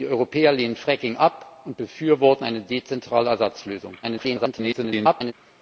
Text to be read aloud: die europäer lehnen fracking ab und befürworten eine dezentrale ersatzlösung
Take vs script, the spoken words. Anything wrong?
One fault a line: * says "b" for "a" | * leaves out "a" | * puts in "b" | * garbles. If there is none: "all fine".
* garbles